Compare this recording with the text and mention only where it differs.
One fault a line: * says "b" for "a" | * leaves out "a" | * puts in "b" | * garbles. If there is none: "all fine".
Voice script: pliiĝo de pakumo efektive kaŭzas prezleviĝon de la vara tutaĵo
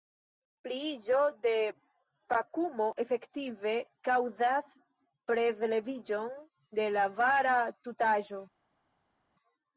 all fine